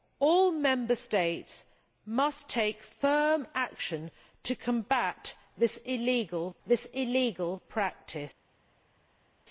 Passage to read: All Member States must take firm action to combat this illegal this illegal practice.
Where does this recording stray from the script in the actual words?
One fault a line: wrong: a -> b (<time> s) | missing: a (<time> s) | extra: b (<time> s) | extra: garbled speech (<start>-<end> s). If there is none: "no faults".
no faults